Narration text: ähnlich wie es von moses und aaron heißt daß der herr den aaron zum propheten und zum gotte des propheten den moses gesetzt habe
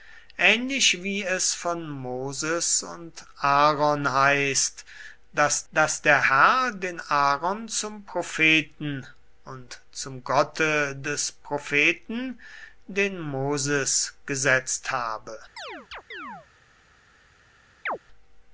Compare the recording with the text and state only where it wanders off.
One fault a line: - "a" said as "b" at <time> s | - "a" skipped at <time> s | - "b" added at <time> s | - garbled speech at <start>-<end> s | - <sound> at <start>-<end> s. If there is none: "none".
- "daß" added at 5.7 s
- chirp at 15.6-16.5 s
- chirp at 17.9-18.0 s